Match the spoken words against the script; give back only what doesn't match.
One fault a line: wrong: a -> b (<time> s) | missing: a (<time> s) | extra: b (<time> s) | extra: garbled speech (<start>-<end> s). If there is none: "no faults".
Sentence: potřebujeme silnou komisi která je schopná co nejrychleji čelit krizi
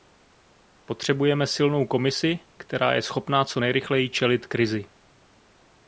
no faults